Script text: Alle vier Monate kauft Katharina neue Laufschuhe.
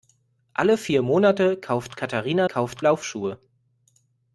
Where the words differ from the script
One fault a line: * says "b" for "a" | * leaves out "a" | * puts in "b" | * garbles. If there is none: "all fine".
* says "kauft" for "neue"